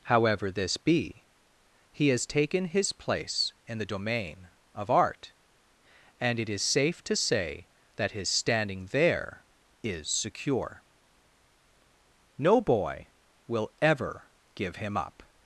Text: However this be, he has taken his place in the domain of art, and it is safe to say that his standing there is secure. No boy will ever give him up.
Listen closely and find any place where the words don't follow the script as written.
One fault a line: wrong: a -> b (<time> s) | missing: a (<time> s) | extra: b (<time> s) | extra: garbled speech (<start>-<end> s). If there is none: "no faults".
no faults